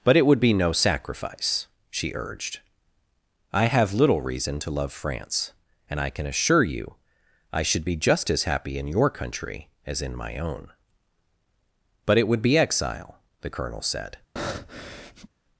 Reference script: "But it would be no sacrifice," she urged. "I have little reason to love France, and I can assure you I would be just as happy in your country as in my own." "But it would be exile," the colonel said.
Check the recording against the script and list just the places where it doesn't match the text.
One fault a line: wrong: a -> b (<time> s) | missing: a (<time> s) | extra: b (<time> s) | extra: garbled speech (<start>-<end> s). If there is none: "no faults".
wrong: would -> should (7.6 s)